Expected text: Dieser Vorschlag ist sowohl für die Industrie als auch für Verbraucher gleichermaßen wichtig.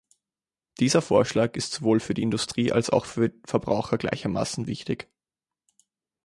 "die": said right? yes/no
yes